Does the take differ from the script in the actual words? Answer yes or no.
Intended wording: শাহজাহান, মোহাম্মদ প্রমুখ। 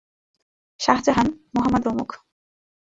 no